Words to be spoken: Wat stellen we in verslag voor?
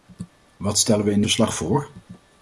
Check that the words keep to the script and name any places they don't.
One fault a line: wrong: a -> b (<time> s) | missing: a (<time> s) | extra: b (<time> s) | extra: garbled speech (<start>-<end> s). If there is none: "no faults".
no faults